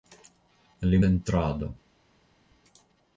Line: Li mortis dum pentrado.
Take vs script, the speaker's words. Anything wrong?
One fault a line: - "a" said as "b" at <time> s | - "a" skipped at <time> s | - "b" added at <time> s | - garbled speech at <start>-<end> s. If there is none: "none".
- "mortis dum" skipped at 1.0 s